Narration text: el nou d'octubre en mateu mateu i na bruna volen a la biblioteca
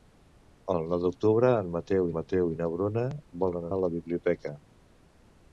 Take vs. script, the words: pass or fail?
pass